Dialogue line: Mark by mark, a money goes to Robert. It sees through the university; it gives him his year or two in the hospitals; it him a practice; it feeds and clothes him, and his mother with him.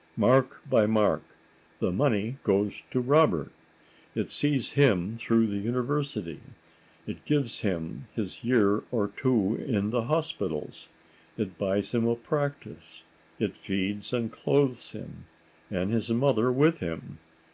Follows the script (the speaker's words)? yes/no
no